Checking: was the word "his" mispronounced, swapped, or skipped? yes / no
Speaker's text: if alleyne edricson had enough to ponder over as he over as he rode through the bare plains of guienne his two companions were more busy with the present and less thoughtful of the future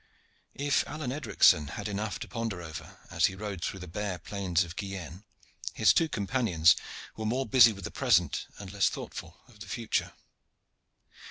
no